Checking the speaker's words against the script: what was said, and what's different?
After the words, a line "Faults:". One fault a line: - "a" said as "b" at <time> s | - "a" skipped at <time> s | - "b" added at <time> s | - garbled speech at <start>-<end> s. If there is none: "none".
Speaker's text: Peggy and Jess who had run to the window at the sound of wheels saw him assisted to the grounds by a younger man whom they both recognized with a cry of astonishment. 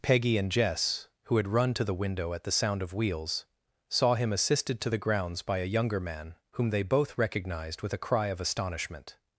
Peggy and Jess who had run to the window at the sound of wheels saw him assisted to the grounds by a younger man whom they both recognized with a cry of astonishment.
Faults:
none